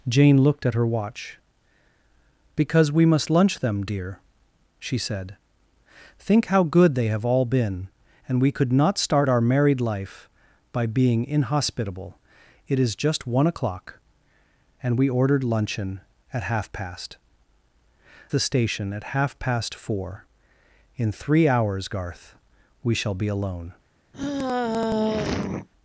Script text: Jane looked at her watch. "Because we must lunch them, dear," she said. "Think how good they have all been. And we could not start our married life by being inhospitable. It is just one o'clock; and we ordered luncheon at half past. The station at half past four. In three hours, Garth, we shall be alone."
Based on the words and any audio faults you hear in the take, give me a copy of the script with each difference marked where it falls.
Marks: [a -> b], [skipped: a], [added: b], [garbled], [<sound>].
Jane looked at her watch. "Because we must lunch them, dear," she said. "Think how good they have all been. And we could not start our married life by being inhospitable. It is just one o'clock; and we ordered luncheon at half past. The station at half past four. In three hours, Garth, we shall be alone." [sigh]